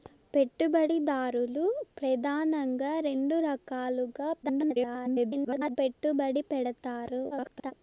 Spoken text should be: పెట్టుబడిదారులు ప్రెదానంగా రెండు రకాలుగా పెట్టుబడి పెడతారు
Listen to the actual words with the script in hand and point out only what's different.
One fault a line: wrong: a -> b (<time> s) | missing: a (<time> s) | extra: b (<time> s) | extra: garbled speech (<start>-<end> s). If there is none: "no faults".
extra: garbled speech (4.4-5.8 s)
extra: garbled speech (7.3-7.7 s)